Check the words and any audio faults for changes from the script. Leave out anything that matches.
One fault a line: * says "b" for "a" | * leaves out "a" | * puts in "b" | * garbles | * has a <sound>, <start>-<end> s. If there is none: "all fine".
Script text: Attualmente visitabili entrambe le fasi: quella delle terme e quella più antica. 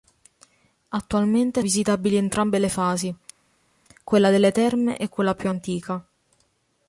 all fine